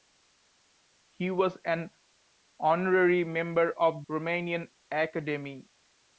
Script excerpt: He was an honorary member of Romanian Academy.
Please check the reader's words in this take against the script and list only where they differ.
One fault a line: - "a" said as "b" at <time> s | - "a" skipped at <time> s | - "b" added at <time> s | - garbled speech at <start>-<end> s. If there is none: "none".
none